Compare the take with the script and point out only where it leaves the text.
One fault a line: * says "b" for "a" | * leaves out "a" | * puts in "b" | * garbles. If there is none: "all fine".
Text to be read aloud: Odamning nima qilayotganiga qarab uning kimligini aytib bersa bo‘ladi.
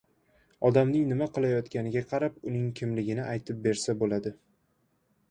all fine